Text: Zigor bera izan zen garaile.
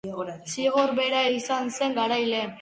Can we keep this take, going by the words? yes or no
yes